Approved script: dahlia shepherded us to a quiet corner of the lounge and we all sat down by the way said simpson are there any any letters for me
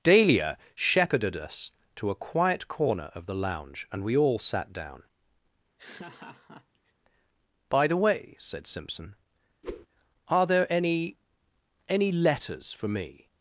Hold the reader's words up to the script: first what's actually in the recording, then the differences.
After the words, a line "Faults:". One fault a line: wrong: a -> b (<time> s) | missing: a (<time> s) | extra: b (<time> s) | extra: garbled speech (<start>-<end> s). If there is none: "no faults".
dahlia shepherded us to a quiet corner of the lounge and we all sat down by the way said simpson are there any any letters for me
Faults:
no faults